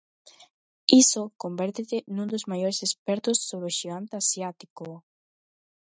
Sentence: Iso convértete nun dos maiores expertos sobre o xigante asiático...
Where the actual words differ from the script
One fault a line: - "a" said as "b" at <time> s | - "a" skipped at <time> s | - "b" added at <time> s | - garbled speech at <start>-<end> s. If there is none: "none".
none